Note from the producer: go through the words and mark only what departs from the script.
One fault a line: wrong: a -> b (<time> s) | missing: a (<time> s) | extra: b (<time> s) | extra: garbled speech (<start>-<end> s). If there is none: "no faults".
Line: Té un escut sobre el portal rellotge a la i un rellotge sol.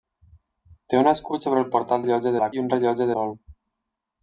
no faults